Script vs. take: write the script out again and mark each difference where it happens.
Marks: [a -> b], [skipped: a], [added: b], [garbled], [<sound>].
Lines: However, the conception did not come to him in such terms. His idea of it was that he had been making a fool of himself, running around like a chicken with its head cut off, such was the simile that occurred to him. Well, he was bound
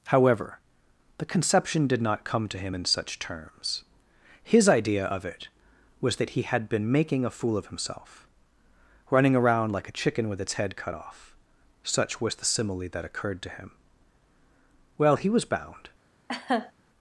However, the conception did not come to him in such terms. His idea of it was that he had been making a fool of himself, running around like a chicken with its head cut off, such was the simile that occurred to him. Well, he was bound [laugh]